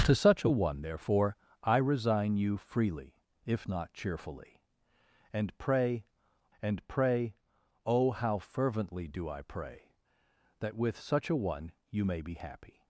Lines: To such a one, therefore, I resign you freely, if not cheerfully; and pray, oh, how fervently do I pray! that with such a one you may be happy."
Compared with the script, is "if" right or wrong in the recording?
right